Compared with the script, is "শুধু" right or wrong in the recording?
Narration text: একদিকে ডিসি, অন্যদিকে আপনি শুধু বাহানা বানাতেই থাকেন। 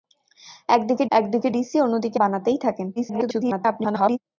wrong